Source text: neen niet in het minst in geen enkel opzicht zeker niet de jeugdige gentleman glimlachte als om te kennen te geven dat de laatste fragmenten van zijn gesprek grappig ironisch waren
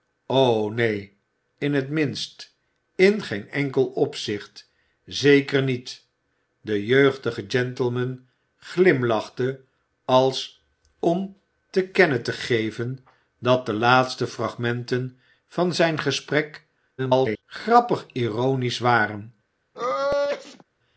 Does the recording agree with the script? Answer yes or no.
no